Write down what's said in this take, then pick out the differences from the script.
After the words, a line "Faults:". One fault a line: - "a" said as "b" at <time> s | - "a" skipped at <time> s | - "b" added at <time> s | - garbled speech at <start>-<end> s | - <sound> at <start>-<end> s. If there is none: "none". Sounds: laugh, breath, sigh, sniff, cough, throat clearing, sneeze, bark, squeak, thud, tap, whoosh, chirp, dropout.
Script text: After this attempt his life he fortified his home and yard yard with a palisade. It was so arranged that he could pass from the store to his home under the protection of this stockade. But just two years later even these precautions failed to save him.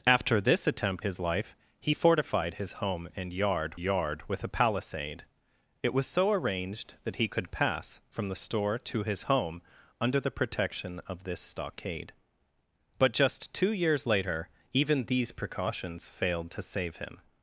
After this attempt his life he fortified his home and yard yard with a palisade. It was so arranged that he could pass from the store to his home under the protection of this stockade. But just two years later even these precautions failed to save him.
Faults:
none